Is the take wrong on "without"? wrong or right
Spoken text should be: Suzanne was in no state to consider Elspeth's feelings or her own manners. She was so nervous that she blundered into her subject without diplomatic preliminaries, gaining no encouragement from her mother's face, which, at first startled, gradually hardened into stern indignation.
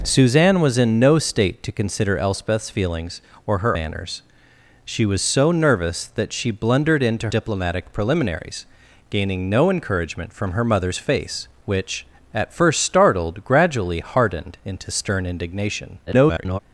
wrong